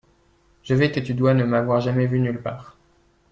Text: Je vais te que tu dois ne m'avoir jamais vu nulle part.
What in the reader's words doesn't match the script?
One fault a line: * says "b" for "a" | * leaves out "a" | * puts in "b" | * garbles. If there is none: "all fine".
all fine